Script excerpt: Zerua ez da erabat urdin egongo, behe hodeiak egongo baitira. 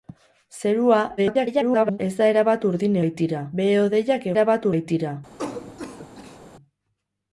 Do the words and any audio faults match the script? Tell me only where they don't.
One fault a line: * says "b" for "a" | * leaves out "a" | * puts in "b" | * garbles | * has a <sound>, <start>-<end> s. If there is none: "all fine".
* garbles
* says "baitira" for "egongo"
* says "erabat" for "egongo"
* has a cough, 5.4-6.4 s